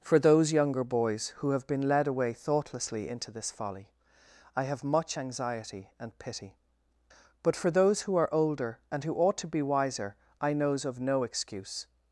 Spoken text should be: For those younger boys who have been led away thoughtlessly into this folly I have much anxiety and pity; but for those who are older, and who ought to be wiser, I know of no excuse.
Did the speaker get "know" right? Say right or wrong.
wrong